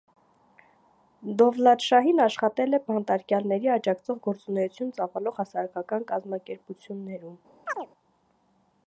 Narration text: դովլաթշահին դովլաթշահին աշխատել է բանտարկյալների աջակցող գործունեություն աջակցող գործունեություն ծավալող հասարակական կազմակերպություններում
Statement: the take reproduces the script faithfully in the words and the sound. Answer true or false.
false